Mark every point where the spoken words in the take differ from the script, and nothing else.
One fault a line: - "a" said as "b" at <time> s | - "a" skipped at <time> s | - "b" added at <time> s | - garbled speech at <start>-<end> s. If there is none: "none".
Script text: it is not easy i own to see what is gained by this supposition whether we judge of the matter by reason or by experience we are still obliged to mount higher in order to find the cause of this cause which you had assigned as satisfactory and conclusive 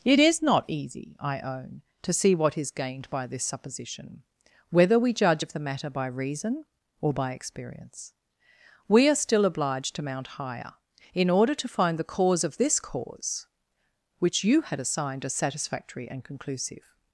none